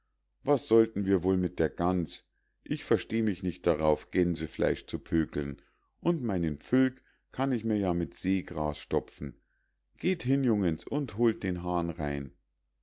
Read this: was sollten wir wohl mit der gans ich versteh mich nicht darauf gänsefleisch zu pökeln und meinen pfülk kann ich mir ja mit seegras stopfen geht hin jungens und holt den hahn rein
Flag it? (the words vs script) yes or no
no